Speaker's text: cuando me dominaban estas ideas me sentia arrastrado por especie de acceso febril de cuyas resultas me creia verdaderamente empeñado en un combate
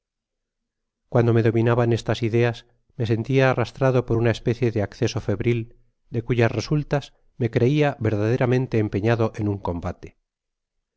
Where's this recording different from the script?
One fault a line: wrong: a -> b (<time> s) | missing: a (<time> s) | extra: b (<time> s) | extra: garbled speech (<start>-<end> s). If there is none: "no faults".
extra: una (4.2 s)